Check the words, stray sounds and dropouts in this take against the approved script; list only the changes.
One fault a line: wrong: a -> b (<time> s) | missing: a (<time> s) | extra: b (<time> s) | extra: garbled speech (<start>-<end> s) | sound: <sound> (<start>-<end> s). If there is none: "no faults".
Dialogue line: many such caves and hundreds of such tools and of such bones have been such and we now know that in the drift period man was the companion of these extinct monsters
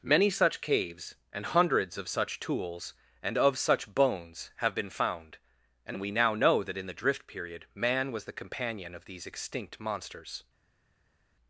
wrong: such -> found (4.9 s)